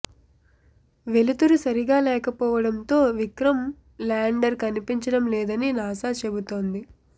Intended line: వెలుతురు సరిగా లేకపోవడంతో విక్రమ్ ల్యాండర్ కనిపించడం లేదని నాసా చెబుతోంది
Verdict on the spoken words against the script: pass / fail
pass